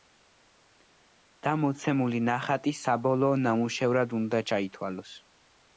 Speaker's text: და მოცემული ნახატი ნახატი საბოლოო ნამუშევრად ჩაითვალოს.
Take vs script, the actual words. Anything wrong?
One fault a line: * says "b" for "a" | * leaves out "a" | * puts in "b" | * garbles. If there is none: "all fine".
* leaves out "ნახატი"
* puts in "უნდა"